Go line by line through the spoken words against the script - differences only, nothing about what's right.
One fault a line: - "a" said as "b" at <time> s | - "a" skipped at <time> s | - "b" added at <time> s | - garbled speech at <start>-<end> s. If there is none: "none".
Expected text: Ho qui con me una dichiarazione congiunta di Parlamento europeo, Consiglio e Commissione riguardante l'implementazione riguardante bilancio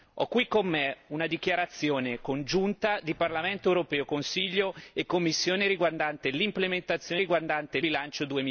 none